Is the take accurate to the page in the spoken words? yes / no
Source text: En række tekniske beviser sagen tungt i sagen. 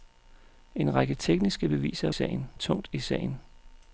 yes